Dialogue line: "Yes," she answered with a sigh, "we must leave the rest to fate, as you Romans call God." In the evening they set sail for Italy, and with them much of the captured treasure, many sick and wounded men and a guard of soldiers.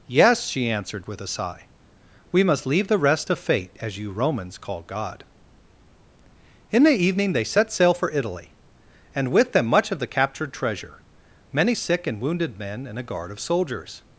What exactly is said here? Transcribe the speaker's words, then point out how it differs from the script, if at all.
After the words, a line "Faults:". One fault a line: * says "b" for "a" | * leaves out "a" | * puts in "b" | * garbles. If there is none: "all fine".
"Yes," she answered with a sigh, "we must leave the rest to fate, as you Romans call God." In the evening they set sail for Italy, and with them much of the captured treasure, many sick and wounded men and a guard of soldiers.
Faults:
all fine